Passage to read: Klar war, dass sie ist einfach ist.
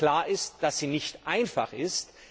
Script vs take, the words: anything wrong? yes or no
yes